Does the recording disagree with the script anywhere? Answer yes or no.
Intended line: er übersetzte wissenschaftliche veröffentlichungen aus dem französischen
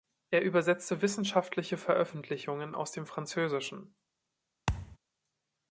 no